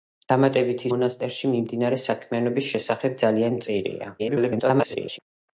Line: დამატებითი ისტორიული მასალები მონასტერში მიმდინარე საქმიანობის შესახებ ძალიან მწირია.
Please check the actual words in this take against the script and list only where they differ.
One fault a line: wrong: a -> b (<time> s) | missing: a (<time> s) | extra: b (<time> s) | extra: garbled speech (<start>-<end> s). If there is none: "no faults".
missing: ისტორიული მასალები (0.9 s)
extra: garbled speech (4.2-5.2 s)